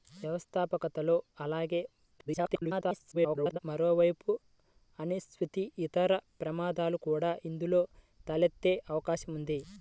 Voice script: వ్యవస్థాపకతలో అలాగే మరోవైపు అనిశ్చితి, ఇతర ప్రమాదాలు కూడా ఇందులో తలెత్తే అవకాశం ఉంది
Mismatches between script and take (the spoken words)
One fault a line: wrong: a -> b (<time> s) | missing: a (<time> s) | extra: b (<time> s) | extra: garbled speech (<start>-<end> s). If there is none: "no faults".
extra: garbled speech (2.2-3.6 s)